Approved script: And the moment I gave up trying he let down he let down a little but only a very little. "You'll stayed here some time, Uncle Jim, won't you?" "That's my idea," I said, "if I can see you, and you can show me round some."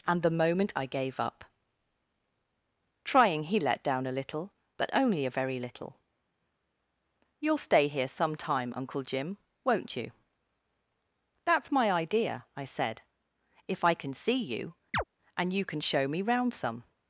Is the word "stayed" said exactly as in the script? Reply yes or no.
no